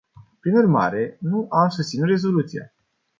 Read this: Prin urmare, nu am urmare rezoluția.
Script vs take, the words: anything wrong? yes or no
yes